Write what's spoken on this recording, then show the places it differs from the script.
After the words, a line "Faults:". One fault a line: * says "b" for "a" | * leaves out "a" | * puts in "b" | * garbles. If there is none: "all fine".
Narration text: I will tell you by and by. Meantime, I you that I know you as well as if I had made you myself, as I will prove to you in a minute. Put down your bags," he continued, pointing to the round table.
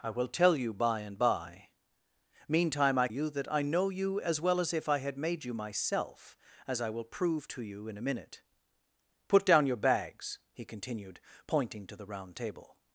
I will tell you by and by. Meantime, I you that I know you as well as if I had made you myself, as I will prove to you in a minute. Put down your bags," he continued, pointing to the round table.
Faults:
all fine